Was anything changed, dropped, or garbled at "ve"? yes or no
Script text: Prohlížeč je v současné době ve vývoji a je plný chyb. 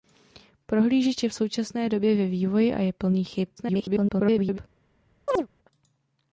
no